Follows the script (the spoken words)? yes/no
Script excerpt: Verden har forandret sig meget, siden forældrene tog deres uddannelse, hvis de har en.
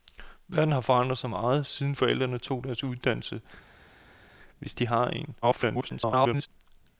no